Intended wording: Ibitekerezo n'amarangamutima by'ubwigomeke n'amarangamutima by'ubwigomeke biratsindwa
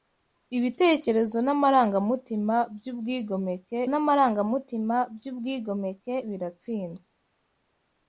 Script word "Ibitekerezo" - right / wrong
right